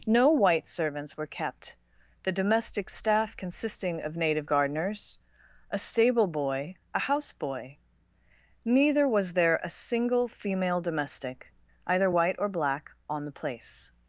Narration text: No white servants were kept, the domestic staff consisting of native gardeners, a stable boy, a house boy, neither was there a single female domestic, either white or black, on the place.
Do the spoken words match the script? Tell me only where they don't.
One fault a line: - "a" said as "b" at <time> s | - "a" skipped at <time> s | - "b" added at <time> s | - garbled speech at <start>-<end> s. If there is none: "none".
none